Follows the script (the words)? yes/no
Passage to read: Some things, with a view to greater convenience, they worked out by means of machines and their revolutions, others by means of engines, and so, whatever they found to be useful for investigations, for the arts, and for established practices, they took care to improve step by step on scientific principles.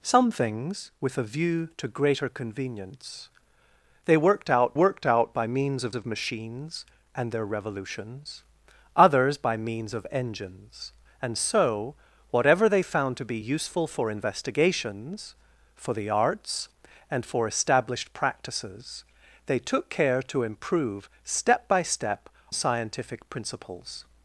no